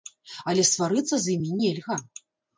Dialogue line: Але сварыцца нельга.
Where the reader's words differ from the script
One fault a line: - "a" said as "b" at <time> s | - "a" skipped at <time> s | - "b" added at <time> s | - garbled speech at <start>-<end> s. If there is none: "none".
- "з імі" added at 1.3 s